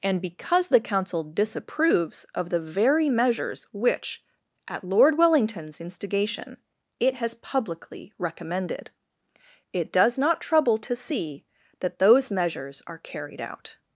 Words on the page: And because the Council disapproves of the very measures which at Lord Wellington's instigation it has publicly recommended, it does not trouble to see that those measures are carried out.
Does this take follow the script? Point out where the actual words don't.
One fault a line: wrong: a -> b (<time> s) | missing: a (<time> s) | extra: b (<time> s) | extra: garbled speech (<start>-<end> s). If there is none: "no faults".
no faults